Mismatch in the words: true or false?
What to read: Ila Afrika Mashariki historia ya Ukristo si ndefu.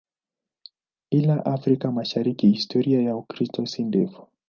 false